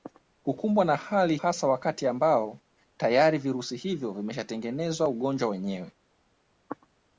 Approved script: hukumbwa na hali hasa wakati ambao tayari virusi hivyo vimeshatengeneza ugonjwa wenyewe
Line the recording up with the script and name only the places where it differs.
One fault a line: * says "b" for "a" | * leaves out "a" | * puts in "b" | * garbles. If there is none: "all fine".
all fine